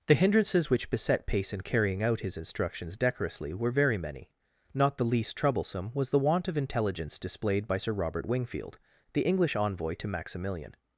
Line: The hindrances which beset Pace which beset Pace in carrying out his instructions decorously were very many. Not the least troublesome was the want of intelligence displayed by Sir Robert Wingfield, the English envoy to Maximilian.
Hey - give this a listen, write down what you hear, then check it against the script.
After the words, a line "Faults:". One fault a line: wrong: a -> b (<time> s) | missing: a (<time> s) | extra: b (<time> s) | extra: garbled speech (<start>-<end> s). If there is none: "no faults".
The hindrances which beset Pace in carrying out his instructions decorously were very many. Not the least troublesome was the want of intelligence displayed by Sir Robert Wingfield, the English envoy to Maximilian.
Faults:
missing: which beset Pace (1.5 s)